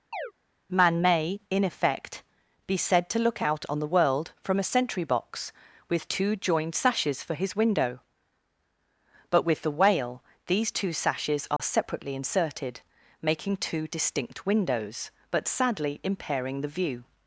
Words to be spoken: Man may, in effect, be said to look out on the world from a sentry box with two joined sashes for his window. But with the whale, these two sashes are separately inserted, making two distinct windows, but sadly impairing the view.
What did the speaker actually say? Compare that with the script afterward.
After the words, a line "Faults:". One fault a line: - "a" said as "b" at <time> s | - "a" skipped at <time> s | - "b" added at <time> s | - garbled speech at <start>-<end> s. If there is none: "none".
Man may, in effect, be said to look out on the world from a sentry box with two joined sashes for his window. But with the whale, these two sashes are separately inserted, making two distinct windows, but sadly impairing the view.
Faults:
none